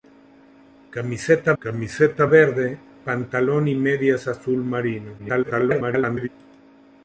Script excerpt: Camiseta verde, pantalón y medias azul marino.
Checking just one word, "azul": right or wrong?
right